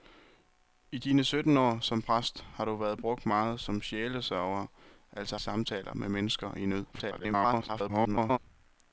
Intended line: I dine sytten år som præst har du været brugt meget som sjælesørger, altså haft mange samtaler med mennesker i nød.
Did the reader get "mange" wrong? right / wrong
wrong